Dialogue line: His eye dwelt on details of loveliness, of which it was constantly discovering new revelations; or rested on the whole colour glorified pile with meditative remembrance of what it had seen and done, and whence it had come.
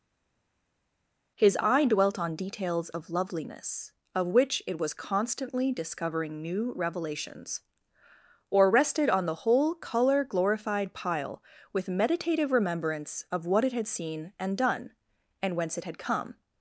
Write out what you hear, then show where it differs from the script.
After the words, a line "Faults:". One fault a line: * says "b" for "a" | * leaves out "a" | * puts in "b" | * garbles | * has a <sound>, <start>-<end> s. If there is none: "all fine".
His eye dwelt on details of loveliness, of which it was constantly discovering new revelations; or rested on the whole colour glorified pile with meditative remembrance of what it had seen and done, and whence it had come.
Faults:
all fine